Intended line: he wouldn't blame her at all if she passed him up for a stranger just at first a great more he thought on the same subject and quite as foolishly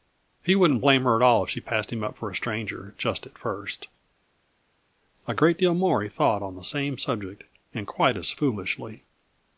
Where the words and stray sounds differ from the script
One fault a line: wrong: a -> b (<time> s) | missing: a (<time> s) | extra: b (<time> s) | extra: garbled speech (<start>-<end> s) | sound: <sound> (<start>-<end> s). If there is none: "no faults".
extra: deal (5.6 s)